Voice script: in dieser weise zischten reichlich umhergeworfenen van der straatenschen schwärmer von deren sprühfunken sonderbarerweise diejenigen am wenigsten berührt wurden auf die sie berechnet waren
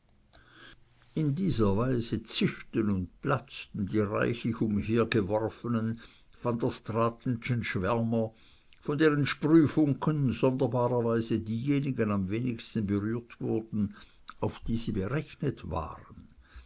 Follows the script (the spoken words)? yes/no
no